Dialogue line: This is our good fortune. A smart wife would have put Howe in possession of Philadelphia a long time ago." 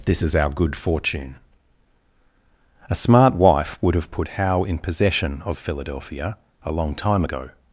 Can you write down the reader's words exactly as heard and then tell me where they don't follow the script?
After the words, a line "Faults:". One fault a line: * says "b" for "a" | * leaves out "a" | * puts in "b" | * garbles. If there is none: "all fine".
This is our good fortune. A smart wife would have put Howe in possession of Philadelphia a long time ago."
Faults:
all fine